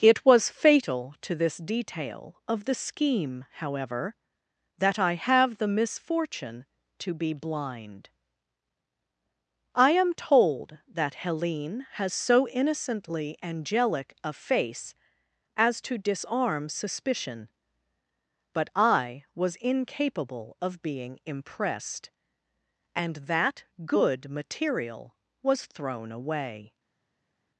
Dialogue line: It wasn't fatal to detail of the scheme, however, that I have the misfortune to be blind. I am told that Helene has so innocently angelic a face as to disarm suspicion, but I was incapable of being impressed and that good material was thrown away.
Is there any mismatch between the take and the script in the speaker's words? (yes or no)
yes